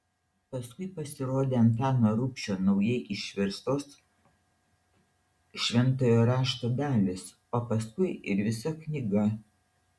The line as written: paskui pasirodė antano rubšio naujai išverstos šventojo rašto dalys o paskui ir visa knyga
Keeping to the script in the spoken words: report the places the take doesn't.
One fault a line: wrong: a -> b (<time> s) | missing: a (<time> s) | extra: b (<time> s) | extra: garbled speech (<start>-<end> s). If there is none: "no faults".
no faults